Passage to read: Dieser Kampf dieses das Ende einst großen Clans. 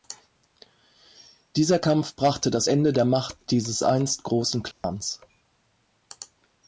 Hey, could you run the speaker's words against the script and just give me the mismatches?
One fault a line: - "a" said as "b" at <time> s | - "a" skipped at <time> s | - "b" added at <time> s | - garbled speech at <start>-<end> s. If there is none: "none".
- "dieses" said as "brachte" at 2.2 s
- "der Macht dieses" added at 2.9 s